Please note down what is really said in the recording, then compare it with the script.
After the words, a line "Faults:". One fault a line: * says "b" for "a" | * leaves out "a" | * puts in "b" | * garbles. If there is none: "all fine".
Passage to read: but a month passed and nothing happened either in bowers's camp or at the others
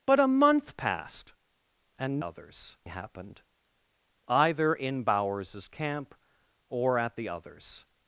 but a month passed and others happened either in bowers's camp or at the others
Faults:
* says "others" for "nothing"